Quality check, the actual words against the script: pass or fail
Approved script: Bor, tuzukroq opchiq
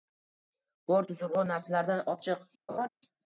fail